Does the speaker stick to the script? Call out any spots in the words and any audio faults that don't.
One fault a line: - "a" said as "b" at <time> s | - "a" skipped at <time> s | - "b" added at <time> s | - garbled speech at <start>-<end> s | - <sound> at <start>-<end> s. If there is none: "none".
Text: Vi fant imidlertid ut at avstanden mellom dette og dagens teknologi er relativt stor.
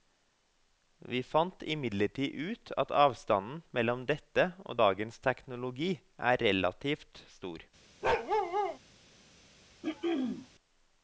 - bark at 8.0-8.8 s
- throat clearing at 9.8-10.5 s